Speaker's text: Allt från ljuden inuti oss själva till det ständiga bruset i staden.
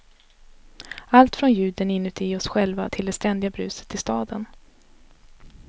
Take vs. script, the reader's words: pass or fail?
pass